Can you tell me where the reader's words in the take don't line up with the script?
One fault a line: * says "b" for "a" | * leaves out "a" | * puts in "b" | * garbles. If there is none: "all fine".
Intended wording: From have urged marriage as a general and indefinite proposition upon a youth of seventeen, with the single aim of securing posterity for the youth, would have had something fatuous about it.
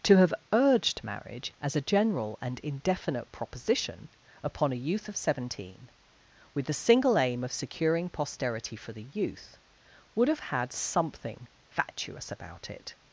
* says "To" for "From"